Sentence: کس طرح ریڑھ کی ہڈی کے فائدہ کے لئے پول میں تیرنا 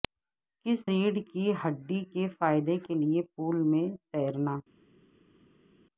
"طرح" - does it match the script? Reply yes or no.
no